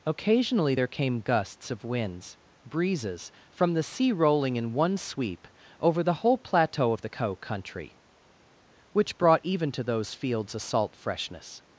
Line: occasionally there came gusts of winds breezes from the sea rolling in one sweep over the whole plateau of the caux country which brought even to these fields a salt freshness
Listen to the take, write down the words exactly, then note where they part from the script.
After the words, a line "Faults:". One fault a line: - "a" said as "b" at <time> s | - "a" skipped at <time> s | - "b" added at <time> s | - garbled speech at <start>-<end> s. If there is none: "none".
occasionally there came gusts of winds breezes from the sea rolling in one sweep over the whole plateau of the caux country which brought even to those fields a salt freshness
Faults:
- "these" said as "those" at 9.8 s